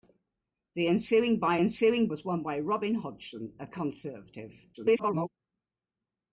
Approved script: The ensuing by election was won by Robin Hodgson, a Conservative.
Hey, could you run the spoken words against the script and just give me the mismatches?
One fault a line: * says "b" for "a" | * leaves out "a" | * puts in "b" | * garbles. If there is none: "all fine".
* says "ensuing" for "election"
* garbles